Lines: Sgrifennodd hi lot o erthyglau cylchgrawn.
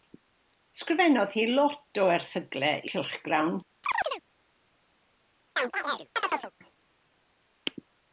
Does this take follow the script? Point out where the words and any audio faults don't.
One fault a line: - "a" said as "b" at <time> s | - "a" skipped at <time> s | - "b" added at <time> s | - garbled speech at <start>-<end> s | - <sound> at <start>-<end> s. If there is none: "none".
- chirp at 3.8-4.2 s
- chirp at 5.6-6.5 s